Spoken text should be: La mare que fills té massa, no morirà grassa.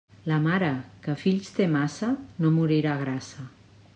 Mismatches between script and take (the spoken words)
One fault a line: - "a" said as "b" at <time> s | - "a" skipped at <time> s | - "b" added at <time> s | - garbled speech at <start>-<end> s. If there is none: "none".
none